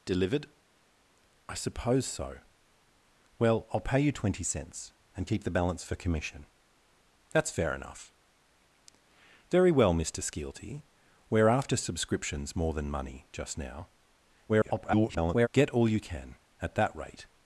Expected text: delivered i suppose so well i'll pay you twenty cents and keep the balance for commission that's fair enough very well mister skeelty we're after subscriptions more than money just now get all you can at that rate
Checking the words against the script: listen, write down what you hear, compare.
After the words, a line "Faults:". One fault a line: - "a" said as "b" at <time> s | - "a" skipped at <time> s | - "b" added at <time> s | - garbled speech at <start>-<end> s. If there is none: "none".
delivered i suppose so well i'll pay you twenty cents and keep the balance for commission that's fair enough very well mister skeelty we're after subscriptions more than money just now [garbled] get all you can at that rate
Faults:
- garbled speech at 14.5-15.5 s